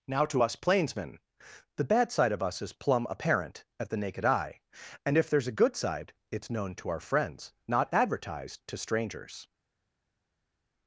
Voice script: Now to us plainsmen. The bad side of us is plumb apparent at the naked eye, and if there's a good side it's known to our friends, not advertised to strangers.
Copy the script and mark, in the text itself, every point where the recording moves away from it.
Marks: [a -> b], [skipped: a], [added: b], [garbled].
Now to us plainsmen. The bad side of us is plumb apparent at the naked eye, and if there's a good side it's known to our friends, not advertised to strangers.